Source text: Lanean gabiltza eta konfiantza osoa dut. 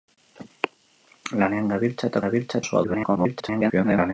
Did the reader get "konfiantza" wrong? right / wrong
wrong